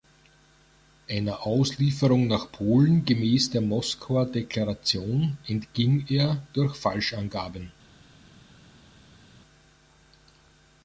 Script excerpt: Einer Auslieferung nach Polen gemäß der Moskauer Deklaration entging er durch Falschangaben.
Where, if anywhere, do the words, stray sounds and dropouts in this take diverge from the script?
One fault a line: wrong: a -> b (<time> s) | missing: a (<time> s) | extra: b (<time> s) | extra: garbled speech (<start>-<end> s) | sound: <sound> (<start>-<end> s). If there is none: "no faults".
no faults